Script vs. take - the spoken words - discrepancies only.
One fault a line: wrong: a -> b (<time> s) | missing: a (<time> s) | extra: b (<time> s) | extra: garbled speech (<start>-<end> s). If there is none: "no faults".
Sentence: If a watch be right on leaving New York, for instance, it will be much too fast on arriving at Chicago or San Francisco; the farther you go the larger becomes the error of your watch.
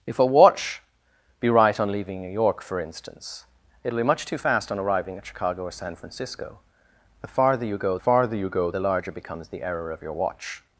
extra: farther you go (7.9 s)